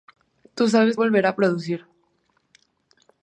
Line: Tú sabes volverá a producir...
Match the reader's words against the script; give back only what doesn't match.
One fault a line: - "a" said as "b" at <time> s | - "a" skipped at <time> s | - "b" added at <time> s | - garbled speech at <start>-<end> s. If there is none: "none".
none